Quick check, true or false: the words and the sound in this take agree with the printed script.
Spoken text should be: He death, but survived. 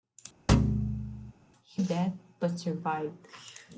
false